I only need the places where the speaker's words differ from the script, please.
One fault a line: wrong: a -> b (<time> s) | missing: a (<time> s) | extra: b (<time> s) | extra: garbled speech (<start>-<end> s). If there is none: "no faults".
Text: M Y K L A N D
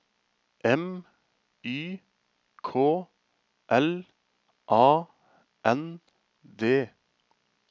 no faults